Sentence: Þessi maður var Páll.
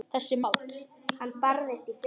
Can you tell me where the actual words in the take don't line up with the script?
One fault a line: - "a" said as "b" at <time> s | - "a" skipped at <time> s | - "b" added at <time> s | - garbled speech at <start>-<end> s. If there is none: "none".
- "maður var" skipped at 0.4 s